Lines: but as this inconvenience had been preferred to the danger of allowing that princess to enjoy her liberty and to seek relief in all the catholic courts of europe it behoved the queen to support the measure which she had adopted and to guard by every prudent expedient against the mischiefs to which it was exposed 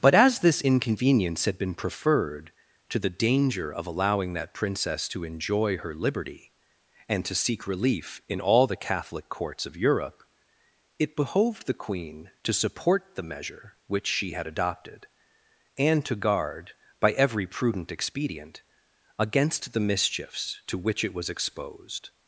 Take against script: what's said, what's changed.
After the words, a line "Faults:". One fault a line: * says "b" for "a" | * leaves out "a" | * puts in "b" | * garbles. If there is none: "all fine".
but as this inconvenience had been preferred to the danger of allowing that princess to enjoy her liberty and to seek relief in all the catholic courts of europe it behoved the queen to support the measure which she had adopted and to guard by every prudent expedient against the mischiefs to which it was exposed
Faults:
all fine